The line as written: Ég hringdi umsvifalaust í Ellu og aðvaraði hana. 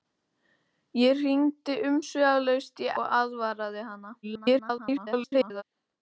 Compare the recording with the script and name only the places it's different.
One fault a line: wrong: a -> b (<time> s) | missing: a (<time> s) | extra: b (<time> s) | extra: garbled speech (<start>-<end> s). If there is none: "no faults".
missing: Ellu (2.9 s)
extra: garbled speech (4.2-5.6 s)